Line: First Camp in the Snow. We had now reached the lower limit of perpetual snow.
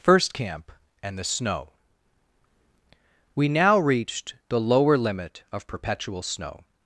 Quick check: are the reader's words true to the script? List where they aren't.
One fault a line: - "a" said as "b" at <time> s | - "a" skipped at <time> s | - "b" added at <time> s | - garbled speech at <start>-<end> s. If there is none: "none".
- "in" said as "and" at 1.0 s
- "had" skipped at 3.5 s